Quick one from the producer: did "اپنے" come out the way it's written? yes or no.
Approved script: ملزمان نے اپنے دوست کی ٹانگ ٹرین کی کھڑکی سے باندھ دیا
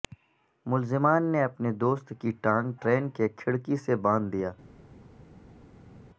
yes